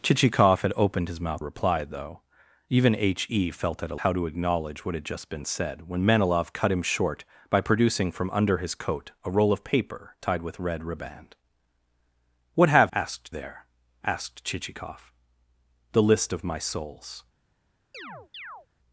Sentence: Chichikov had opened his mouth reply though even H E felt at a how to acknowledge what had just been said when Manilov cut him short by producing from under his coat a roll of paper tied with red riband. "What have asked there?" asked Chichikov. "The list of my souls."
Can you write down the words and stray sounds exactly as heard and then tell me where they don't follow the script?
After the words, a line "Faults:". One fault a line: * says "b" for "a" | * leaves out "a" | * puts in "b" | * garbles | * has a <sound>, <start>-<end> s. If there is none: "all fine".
Chichikov had opened his mouth reply though even H E felt at a how to acknowledge what had just been said when Manilov cut him short by producing from under his coat a roll of paper tied with red riband. "What have asked there?" asked Chichikov. "The list of my souls."
Faults:
* has a chirp, 17.9-18.7 s